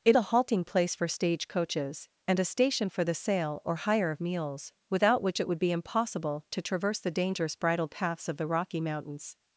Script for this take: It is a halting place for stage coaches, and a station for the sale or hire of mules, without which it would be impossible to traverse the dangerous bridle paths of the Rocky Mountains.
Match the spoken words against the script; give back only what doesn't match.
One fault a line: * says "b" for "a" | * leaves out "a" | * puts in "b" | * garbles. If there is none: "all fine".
* leaves out "is"